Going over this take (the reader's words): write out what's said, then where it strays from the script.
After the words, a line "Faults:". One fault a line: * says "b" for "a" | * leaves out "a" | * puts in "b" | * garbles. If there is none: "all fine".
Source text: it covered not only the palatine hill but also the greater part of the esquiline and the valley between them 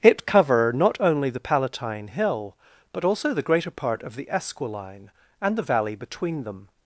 it cover not only the palatine hill but also the greater part of the esquiline and the valley between them
Faults:
* says "cover" for "covered"